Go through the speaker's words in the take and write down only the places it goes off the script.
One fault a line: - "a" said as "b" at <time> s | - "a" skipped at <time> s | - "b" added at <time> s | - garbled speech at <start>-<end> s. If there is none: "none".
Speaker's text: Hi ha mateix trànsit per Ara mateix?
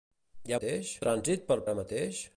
none